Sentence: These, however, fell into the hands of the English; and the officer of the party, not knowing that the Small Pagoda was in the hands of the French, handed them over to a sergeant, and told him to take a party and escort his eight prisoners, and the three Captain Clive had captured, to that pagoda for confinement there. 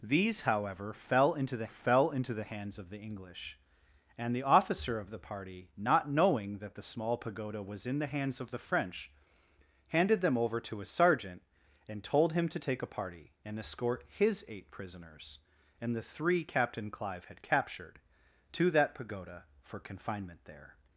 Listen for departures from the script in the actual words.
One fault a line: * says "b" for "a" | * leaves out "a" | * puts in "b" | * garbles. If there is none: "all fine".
* puts in "fell into the"